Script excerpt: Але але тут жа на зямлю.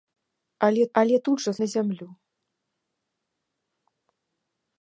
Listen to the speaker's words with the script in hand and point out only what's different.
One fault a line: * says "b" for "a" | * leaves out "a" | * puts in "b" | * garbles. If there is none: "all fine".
all fine